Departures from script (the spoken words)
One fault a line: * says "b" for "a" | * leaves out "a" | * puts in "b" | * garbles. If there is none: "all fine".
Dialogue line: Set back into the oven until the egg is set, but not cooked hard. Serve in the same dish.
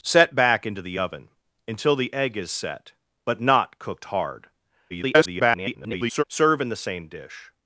* garbles